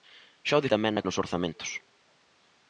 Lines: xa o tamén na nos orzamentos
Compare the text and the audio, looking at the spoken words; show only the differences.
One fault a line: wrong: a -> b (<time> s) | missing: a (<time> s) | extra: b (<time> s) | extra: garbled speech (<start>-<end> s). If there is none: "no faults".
no faults